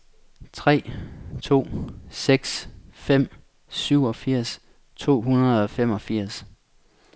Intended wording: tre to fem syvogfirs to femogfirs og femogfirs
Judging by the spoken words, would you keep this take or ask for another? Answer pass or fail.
fail